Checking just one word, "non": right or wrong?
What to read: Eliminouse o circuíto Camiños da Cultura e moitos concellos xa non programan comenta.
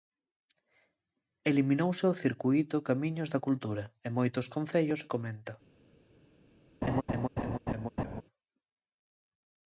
wrong